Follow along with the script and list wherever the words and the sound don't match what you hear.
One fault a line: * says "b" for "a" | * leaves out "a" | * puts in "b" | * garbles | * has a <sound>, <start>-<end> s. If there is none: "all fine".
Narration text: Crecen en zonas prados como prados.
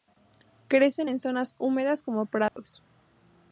* says "húmedas" for "prados"
* has a dropout, 2.5-2.6 s